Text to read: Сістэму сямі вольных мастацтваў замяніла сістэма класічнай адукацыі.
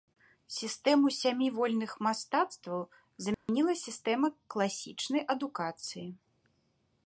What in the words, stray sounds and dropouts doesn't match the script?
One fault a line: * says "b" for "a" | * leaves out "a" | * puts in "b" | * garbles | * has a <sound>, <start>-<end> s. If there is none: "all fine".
* has a dropout, 3.3-3.5 s